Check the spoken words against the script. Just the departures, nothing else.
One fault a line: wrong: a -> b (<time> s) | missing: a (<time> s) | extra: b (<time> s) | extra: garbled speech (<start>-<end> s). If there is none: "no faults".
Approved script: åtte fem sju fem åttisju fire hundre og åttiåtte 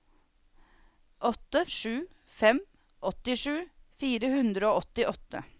missing: fem (1.6 s)